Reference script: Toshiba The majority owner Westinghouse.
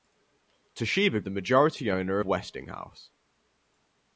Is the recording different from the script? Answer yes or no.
no